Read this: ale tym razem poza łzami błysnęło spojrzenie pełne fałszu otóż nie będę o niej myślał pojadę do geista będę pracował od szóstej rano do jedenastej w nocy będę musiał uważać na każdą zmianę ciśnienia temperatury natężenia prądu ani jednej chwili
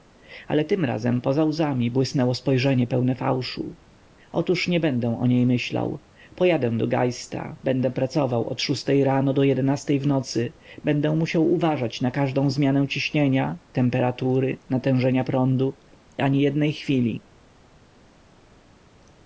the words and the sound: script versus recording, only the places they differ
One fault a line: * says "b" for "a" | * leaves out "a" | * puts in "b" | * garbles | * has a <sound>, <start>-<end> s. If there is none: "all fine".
all fine